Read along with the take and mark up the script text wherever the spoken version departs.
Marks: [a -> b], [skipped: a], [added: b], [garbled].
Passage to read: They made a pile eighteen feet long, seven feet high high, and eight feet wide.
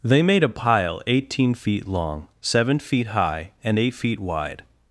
They made a pile eighteen feet long, seven feet high [skipped: high,] and eight feet wide.